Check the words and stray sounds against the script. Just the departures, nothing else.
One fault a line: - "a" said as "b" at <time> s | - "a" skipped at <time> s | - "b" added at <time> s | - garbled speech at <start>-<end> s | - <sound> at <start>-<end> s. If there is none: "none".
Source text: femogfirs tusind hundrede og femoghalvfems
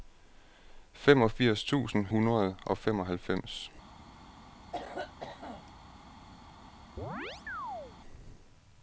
- cough at 4.7-5.7 s
- chirp at 7.0-8.0 s